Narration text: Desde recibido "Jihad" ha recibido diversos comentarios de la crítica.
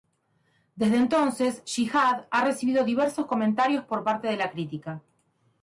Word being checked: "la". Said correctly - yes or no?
yes